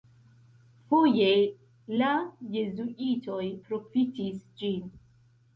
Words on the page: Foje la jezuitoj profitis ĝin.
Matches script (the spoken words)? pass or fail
pass